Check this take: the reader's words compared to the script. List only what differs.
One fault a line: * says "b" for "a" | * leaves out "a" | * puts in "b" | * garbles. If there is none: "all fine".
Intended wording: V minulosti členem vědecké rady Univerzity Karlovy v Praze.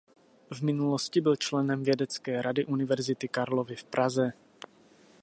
* puts in "byl"